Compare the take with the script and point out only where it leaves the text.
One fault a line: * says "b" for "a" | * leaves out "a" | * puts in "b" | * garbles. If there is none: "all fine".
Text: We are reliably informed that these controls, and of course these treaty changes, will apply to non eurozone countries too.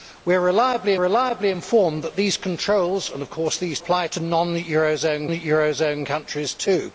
* puts in "reliably"
* leaves out "treaty changes will"
* puts in "eurozone"